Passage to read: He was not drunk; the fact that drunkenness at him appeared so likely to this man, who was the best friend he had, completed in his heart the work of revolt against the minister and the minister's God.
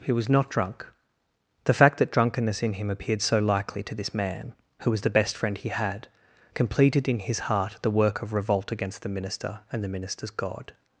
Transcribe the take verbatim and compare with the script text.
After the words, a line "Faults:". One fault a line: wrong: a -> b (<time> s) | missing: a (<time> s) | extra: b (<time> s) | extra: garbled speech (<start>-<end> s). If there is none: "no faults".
He was not drunk; the fact that drunkenness in him appeared so likely to this man, who was the best friend he had, completed in his heart the work of revolt against the minister and the minister's God.
Faults:
wrong: at -> in (2.6 s)